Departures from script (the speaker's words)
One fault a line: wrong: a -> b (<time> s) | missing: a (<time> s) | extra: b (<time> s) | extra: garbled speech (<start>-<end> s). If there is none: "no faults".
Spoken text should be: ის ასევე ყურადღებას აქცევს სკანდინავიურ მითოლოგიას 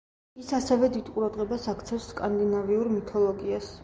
extra: დიდ (0.9 s)